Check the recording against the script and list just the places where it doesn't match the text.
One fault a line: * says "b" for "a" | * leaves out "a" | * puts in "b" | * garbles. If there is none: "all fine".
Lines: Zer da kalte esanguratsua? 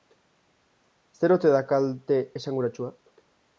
* puts in "ote"